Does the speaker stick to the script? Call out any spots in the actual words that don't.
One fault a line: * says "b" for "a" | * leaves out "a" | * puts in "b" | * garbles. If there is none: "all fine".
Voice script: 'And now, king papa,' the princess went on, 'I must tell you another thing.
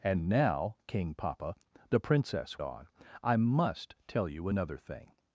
* leaves out "went"